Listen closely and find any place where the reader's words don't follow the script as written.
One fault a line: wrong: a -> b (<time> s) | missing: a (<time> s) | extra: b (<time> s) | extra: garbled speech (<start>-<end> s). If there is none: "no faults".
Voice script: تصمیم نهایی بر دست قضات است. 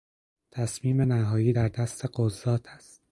wrong: بر -> در (1.5 s)